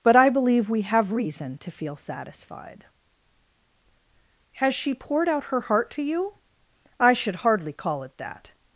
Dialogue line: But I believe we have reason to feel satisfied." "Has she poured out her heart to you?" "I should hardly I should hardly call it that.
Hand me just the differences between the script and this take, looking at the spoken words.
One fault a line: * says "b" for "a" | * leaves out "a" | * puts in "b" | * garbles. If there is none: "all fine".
* leaves out "I should hardly"